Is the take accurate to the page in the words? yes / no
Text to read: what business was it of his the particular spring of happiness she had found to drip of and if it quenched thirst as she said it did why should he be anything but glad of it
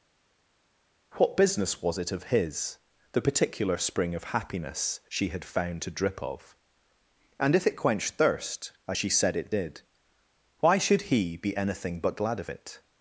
yes